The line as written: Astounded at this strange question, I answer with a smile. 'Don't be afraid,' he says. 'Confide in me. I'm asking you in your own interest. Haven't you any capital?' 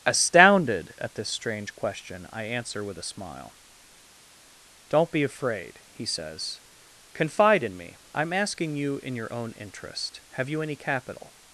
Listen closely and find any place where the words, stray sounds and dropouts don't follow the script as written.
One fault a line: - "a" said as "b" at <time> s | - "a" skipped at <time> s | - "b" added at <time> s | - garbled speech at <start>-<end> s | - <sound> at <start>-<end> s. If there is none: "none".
- "Haven't" said as "Have" at 10.3 s